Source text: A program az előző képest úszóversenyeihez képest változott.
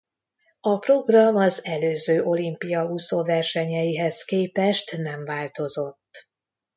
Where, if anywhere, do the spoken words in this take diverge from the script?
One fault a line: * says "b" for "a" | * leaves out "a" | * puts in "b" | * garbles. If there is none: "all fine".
* says "olimpia" for "képest"
* puts in "nem"